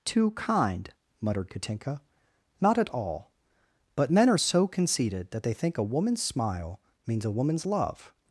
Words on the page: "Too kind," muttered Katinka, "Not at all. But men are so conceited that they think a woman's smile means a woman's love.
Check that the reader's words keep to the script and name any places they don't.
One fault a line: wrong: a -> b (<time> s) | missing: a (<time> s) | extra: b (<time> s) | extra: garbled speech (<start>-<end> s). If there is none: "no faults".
no faults